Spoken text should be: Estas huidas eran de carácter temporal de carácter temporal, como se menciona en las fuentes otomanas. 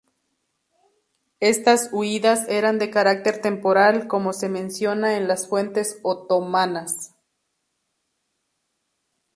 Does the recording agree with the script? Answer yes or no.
no